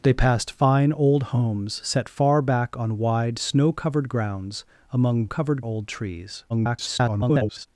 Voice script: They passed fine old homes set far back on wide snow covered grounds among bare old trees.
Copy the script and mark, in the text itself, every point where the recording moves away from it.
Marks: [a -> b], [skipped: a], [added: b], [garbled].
They passed fine old homes set far back on wide snow covered grounds among [bare -> covered] old trees. [garbled]